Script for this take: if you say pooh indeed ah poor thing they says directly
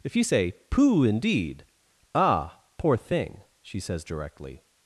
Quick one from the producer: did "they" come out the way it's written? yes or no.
no